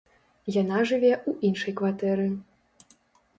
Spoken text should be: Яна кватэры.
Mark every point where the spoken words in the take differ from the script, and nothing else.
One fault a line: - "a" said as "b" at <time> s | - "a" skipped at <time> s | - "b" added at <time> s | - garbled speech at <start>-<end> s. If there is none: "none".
- "жыве ў іншай" added at 0.9 s